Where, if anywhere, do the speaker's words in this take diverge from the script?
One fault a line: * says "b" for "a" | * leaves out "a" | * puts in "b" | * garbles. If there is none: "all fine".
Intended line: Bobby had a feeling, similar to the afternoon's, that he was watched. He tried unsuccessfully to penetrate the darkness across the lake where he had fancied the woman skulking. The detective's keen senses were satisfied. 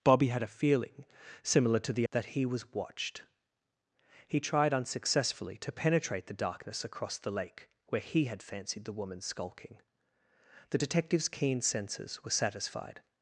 * leaves out "afternoon's"